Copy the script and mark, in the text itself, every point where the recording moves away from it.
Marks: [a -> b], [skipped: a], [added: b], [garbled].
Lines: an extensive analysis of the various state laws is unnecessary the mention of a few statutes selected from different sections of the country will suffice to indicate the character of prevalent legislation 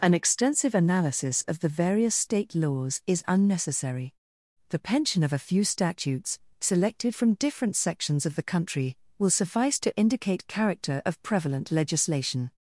an extensive analysis of the various state laws is unnecessary the [mention -> pension] of a few statutes selected from different sections of the country will suffice to indicate [skipped: the] character of prevalent legislation